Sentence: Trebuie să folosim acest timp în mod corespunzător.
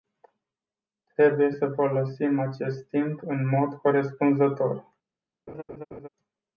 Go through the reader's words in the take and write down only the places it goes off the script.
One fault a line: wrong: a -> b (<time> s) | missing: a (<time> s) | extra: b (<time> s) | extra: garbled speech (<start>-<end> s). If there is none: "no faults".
no faults